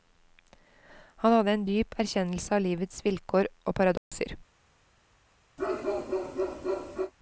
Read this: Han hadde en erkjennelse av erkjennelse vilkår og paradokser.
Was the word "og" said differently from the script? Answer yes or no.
no